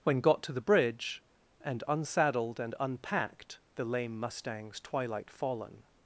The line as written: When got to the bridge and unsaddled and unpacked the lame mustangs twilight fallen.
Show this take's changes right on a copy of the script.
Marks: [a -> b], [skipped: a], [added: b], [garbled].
When got to the bridge and unsaddled and unpacked the lame mustangs twilight fallen.